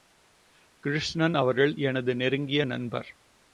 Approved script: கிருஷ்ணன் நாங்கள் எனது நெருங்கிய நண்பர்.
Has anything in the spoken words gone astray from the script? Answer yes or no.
yes